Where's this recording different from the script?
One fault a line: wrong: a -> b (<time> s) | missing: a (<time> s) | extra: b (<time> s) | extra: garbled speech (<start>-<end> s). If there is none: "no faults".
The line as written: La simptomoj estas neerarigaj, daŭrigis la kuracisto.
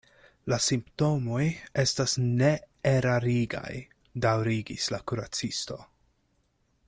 no faults